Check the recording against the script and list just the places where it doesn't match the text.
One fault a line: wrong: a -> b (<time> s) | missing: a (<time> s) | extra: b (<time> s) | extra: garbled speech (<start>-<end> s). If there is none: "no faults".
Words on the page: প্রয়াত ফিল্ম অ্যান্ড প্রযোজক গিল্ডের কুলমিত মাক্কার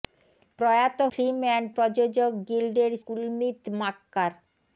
no faults